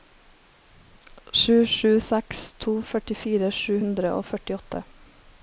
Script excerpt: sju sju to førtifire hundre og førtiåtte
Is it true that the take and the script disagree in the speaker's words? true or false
true